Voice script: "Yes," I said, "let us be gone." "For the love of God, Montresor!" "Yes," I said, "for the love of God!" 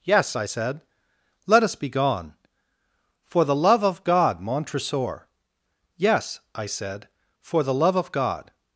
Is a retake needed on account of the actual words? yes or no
no